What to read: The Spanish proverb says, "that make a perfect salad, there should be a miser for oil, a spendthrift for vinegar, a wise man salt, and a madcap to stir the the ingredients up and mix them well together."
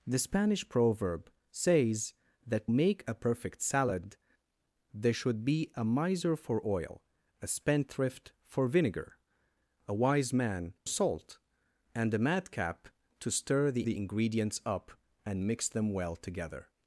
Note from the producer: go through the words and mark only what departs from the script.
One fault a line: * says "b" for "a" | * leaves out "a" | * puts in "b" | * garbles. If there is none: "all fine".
all fine